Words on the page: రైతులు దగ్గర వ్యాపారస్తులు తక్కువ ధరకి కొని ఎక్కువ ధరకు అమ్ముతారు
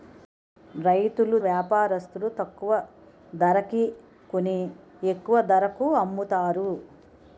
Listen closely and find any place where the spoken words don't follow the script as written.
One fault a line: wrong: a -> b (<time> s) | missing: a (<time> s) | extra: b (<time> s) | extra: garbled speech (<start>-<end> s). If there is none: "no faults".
missing: దగ్గర (1.4 s)